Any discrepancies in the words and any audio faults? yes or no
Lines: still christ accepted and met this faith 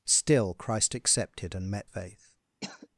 yes